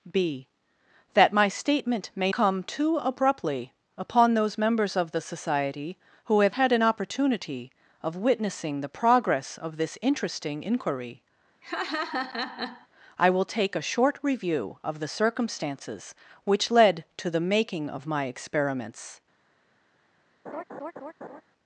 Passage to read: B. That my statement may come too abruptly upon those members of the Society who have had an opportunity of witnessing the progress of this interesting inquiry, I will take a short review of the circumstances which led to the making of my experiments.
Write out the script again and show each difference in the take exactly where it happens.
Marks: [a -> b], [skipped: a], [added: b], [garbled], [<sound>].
B. That my statement may come too abruptly upon those members of the Society who have had an opportunity of witnessing the progress of this interesting inquiry, [laugh] I will take a short review of the circumstances which led to the making of my experiments. [laugh]